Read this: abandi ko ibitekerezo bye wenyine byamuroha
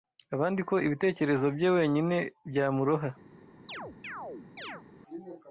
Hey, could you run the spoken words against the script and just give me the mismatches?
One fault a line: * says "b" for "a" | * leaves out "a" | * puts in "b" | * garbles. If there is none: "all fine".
all fine